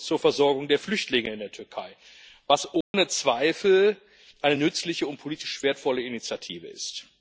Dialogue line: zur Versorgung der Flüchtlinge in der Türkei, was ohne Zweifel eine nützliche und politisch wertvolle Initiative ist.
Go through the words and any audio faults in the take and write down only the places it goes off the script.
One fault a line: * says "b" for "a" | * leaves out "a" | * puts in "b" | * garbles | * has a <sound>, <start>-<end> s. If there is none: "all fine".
* has a dropout, 2.8-2.9 s